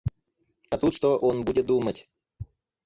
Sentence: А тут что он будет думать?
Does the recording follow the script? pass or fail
pass